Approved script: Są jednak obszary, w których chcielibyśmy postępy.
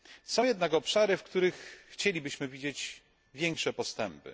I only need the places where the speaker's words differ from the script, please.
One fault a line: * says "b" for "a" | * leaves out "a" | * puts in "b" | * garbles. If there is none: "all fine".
* puts in "widzieć większe"